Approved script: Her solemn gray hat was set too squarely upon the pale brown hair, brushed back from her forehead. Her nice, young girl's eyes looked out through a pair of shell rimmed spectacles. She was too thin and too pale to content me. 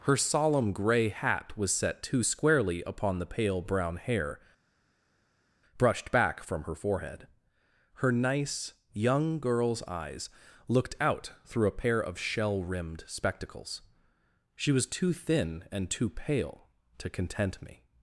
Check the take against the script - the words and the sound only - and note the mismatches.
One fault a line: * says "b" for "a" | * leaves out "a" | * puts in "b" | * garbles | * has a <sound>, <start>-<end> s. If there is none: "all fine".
all fine